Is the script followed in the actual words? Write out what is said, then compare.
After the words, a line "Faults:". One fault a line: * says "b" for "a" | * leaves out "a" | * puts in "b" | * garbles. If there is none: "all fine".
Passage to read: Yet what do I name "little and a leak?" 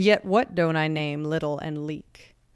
Yet what don't I name "little and leak?"
Faults:
* says "don't" for "do"
* leaves out "a"